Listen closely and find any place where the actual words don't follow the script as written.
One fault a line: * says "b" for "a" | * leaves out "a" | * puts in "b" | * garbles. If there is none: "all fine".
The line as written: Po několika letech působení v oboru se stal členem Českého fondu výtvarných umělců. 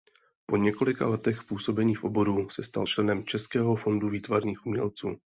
all fine